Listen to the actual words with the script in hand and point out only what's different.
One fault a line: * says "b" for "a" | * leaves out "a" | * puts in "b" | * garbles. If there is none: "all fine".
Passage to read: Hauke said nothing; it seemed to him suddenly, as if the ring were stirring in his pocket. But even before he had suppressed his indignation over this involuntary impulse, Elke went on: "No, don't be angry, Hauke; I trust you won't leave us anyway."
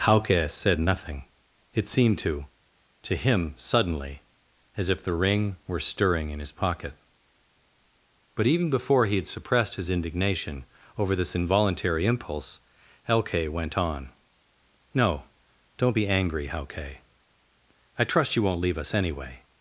* puts in "to"